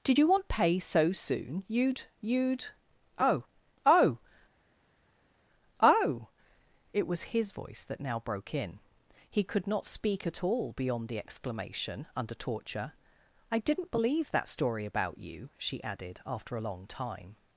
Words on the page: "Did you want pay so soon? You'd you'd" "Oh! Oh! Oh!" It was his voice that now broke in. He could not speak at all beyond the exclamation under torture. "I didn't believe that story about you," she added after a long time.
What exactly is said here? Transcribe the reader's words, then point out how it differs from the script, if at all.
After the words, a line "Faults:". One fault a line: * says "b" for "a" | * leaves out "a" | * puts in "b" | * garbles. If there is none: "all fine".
"Did you want pay so soon? You'd you'd" "Oh! Oh! Oh!" It was his voice that now broke in. He could not speak at all beyond the exclamation under torture. "I didn't believe that story about you," she added after a long time.
Faults:
all fine